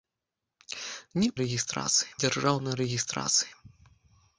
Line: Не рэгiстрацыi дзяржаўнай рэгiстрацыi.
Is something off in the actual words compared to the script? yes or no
no